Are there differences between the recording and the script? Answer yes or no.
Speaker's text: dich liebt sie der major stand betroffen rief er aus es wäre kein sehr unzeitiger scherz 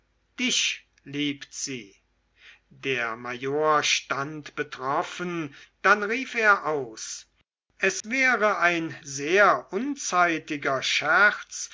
yes